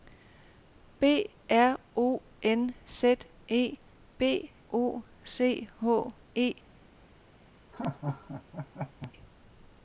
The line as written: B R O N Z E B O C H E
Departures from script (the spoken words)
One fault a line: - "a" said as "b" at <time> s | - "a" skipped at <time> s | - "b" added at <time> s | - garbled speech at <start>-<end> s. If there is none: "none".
none